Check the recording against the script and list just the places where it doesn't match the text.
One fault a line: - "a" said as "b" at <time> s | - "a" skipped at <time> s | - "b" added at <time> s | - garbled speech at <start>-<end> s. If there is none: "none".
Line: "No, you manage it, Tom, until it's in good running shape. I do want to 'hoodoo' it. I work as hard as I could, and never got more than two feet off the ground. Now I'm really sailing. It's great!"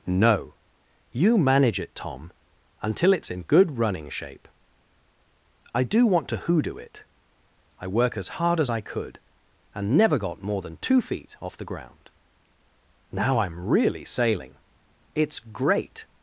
none